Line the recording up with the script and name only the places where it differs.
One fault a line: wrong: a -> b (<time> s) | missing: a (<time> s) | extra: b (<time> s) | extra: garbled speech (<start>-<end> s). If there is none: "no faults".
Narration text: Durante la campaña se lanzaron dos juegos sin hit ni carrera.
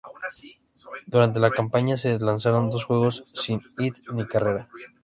no faults